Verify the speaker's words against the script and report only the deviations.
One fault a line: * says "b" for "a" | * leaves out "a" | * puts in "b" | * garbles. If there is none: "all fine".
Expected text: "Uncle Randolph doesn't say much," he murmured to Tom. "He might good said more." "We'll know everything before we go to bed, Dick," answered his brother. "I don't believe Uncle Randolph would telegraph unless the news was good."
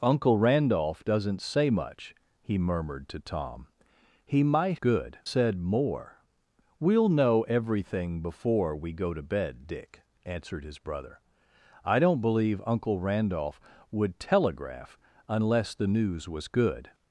all fine